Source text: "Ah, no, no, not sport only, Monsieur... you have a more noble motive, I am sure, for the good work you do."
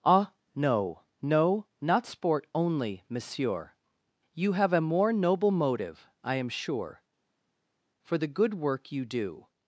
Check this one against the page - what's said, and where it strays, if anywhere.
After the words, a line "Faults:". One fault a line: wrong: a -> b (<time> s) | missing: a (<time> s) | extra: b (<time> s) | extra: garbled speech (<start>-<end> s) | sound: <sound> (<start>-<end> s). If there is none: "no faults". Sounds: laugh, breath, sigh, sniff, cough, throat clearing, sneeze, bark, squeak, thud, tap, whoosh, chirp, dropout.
"Ah, no, no, not sport only, Monsieur... you have a more noble motive, I am sure, for the good work you do."
Faults:
no faults